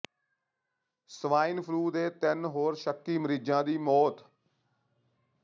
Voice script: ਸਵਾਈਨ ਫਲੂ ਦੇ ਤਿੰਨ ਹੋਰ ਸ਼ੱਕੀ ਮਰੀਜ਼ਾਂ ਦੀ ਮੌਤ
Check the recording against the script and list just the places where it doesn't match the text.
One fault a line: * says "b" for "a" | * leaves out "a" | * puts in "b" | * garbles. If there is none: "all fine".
all fine